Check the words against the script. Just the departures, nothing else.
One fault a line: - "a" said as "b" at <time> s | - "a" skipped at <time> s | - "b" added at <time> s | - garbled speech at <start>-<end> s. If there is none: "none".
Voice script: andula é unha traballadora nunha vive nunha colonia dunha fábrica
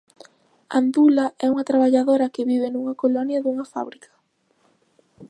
- "nunha" said as "que" at 2.3 s